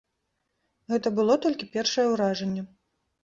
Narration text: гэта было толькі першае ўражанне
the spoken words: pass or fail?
pass